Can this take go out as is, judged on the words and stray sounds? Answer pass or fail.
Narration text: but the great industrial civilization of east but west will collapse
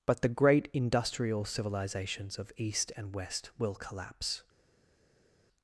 fail